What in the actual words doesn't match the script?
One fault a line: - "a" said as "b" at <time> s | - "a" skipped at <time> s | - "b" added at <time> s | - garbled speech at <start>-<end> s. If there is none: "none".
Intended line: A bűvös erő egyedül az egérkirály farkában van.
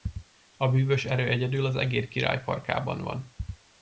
none